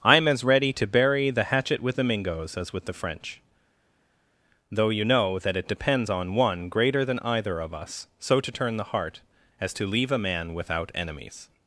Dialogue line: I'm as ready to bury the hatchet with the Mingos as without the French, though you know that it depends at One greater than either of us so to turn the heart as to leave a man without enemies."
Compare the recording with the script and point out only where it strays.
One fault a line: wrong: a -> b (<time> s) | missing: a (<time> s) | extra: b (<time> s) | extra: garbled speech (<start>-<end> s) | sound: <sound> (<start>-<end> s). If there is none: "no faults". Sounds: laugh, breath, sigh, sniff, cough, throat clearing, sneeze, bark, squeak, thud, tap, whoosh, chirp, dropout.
wrong: without -> with (2.7 s)
wrong: at -> on (6.1 s)